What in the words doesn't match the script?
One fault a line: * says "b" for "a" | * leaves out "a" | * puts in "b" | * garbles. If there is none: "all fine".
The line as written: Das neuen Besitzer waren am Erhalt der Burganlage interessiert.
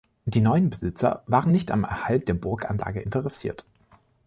* says "Die" for "Das"
* puts in "nicht"